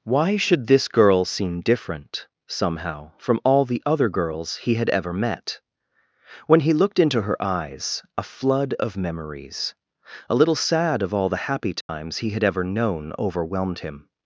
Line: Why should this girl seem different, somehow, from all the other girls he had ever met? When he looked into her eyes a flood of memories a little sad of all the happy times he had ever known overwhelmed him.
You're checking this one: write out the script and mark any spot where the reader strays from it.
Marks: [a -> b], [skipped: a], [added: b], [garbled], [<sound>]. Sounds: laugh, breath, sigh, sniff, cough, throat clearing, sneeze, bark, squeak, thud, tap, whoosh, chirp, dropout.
Why should this girl seem different, somehow, from all the other girls he had ever met? When he looked into her eyes a flood of memories a little sad of all the happy times [dropout] he had ever known overwhelmed him.